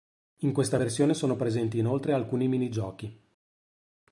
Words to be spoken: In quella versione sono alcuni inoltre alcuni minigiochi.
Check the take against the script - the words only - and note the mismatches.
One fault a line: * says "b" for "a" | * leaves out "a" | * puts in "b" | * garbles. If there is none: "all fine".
* says "questa" for "quella"
* says "presenti" for "alcuni"